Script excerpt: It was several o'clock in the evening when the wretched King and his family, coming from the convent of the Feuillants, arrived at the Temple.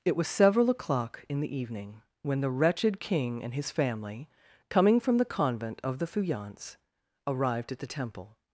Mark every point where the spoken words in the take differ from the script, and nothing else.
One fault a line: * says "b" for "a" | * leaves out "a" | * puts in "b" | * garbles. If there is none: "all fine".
all fine